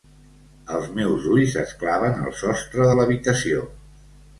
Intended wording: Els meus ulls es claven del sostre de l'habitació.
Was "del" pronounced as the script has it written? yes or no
no